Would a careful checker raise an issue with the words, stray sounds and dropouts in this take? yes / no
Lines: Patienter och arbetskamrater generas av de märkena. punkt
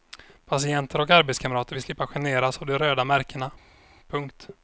yes